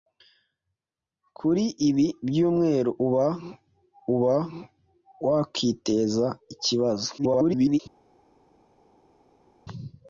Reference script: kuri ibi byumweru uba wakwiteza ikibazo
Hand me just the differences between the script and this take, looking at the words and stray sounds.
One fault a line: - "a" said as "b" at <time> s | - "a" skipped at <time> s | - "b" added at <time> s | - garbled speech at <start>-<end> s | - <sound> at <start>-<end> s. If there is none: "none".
- "uba" added at 4.1 s
- garbled speech at 7.2-7.8 s